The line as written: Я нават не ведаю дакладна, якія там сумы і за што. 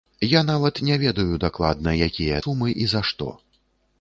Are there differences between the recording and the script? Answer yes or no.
yes